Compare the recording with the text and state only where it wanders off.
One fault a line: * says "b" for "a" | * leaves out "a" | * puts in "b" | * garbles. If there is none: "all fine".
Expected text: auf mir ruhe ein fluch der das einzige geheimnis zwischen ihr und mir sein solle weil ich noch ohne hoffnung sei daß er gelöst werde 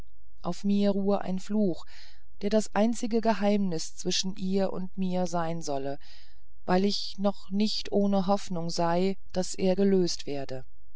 * puts in "nicht"